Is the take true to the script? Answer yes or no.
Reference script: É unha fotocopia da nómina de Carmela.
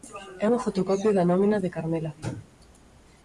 yes